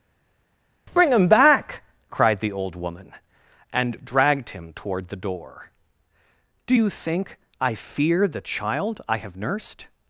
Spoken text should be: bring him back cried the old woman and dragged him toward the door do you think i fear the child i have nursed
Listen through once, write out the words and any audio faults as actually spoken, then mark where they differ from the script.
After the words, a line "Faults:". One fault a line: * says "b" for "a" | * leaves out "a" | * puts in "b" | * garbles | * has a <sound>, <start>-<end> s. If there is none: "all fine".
bring him back cried the old woman and dragged him toward the door do you think i fear the child i have nursed
Faults:
all fine